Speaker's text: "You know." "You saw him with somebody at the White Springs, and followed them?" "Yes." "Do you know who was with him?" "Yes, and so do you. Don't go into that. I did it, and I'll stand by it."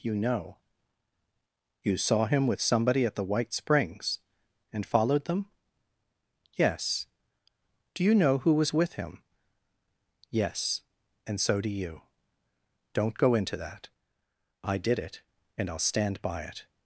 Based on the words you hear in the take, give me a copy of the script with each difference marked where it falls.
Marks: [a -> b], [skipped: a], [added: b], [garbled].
"You know." "You saw him with somebody at the White Springs, and followed them?" "Yes." "Do you know who was with him?" "Yes, and so do you. Don't go into that. I did it, and I'll stand by it."